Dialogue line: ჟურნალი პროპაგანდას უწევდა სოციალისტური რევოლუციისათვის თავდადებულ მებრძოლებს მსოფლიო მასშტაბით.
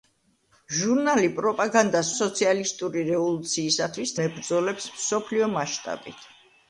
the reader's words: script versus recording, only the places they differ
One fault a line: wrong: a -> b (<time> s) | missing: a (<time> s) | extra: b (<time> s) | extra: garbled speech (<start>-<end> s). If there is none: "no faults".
missing: უწევდა (2.1 s)
missing: თავდადებულ (4.2 s)